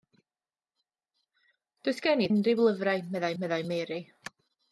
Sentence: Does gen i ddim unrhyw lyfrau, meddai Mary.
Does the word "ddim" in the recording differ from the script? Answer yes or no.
yes